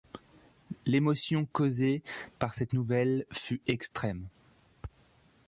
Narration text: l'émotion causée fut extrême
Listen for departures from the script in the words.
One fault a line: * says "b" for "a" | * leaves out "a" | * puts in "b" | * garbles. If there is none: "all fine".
* puts in "par cette nouvelle"